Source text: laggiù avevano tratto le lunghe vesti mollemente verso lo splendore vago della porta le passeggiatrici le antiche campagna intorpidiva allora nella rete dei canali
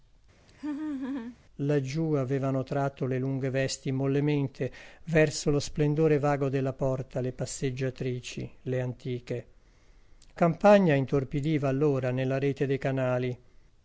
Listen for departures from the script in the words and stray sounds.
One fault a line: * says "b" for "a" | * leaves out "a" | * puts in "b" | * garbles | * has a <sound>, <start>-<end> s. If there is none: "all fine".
* has a laugh, 0.5-1.4 s